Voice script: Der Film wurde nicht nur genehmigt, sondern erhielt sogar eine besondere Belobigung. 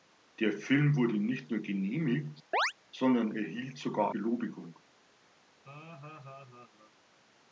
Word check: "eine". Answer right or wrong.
wrong